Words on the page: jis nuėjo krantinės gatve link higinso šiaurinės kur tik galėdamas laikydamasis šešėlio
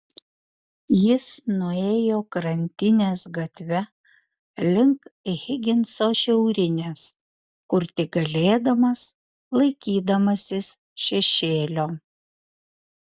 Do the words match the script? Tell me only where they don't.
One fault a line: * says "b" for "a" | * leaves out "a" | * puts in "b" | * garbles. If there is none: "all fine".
all fine